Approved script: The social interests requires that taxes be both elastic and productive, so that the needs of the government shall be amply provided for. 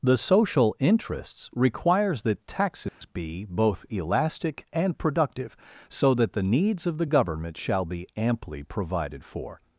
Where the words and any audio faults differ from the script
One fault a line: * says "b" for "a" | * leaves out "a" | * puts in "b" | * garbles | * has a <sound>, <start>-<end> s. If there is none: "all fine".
* has a dropout, 2.9-3.0 s